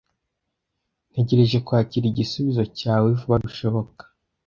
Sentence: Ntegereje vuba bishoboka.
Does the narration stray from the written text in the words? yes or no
yes